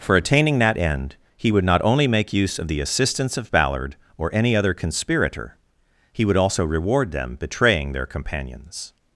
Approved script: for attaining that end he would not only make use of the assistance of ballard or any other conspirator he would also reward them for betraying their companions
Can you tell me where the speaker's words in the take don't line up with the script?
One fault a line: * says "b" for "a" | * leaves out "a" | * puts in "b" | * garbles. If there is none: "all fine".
* leaves out "for"